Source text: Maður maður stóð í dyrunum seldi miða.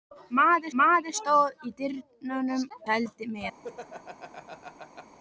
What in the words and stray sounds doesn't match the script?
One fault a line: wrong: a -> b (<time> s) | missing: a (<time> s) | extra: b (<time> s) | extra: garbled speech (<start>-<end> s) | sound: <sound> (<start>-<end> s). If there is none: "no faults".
sound: laugh (3.6-5.2 s)